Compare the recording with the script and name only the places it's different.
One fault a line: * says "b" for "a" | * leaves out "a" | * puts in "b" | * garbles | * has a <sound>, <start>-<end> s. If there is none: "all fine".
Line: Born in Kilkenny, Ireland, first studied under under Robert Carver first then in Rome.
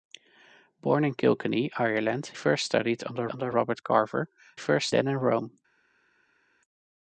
all fine